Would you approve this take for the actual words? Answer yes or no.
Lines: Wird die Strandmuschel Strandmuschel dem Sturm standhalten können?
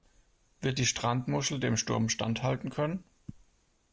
no